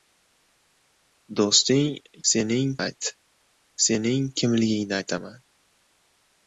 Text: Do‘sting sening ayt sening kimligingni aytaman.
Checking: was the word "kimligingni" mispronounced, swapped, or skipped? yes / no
no